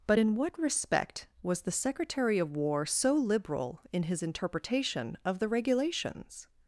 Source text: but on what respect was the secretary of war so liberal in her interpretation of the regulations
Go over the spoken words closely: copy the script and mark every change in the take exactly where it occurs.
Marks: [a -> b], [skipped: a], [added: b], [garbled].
but [on -> in] what respect was the secretary of war so liberal in [her -> his] interpretation of the regulations